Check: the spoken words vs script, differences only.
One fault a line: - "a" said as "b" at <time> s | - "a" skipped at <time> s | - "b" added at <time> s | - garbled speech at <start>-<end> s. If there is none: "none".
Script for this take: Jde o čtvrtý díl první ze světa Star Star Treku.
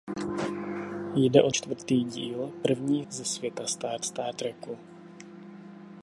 none